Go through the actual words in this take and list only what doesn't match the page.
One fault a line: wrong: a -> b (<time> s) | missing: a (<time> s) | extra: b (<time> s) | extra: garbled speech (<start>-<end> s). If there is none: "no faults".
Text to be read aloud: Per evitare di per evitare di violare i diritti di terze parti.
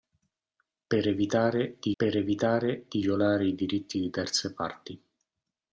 no faults